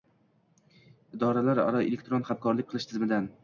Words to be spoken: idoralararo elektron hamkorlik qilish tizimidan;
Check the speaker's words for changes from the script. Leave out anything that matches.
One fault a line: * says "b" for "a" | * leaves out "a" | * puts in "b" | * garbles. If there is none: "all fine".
all fine